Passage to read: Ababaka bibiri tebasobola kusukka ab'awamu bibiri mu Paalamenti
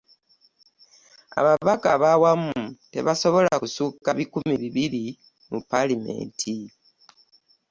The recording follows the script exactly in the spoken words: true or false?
false